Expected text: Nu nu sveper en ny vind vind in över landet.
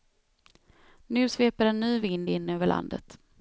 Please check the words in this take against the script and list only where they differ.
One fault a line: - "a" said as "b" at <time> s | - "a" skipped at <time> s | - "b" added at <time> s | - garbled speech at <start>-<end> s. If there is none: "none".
- "nu" skipped at 1.3 s
- "vind" skipped at 2.3 s